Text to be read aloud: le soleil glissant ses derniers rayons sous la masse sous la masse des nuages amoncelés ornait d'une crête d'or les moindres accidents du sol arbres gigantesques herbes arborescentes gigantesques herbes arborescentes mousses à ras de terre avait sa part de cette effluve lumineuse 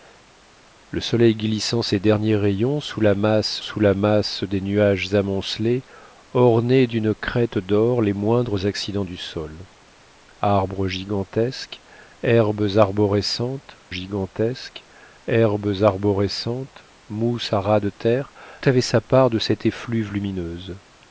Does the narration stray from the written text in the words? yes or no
no